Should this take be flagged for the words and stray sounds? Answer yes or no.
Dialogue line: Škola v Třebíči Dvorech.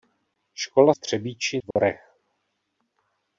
yes